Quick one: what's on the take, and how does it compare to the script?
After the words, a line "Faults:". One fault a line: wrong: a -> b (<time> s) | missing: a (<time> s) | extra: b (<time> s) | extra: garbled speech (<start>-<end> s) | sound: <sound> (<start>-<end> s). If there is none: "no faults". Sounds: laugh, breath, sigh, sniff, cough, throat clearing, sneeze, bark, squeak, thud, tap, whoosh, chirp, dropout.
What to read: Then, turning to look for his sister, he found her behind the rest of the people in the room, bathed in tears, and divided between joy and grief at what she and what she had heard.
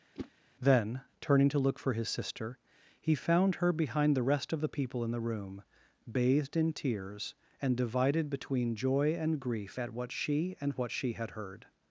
Then, turning to look for his sister, he found her behind the rest of the people in the room, bathed in tears, and divided between joy and grief at what she and what she had heard.
Faults:
sound: whoosh (0.1-0.3 s)